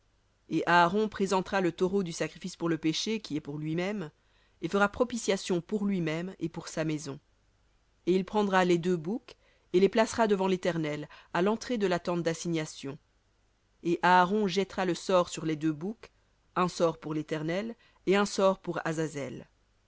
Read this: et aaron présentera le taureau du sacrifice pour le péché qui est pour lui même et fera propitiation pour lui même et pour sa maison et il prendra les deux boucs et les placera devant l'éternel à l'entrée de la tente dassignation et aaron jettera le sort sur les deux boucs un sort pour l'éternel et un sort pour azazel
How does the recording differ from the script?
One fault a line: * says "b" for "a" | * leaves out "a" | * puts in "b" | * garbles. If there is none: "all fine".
all fine